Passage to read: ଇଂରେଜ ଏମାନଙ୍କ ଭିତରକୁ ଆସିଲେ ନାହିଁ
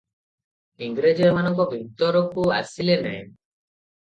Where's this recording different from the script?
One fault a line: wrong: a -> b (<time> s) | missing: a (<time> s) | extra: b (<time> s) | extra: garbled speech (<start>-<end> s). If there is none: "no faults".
no faults